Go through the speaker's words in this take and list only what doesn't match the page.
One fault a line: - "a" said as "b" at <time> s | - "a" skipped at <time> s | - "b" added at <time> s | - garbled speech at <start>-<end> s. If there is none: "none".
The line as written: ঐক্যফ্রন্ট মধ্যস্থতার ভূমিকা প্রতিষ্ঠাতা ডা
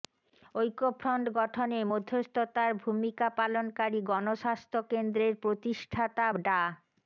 - "গঠনে" added at 1.4 s
- "পালনকারী গণস্বাস্থ্য কেন্দ্রের" added at 3.4 s